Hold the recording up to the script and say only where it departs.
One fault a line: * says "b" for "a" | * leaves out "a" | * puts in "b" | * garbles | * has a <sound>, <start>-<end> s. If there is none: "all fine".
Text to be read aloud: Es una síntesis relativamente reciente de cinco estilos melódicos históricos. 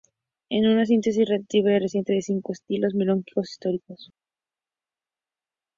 all fine